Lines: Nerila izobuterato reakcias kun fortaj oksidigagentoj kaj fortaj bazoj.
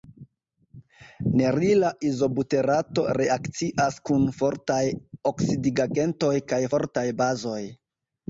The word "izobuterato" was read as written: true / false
true